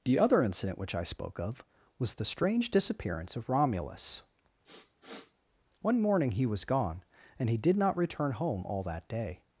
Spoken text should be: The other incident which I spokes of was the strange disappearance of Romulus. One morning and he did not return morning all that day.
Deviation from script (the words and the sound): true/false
true